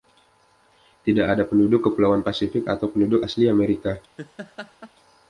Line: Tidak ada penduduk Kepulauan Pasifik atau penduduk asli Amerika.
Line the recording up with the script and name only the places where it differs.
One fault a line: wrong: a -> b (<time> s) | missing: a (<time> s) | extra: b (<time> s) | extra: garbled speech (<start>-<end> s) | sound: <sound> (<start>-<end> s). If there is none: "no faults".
sound: laugh (4.2-4.9 s)